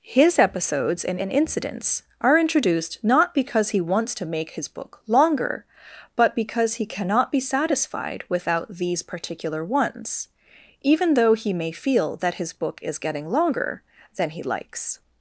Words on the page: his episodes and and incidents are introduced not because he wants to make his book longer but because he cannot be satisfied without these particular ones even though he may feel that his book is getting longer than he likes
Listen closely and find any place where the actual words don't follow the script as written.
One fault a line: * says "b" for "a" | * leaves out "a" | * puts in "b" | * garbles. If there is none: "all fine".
all fine